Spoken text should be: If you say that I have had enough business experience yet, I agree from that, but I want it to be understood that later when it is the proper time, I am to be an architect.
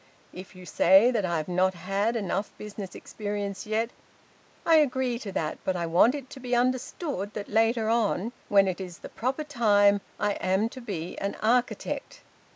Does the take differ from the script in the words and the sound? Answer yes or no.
yes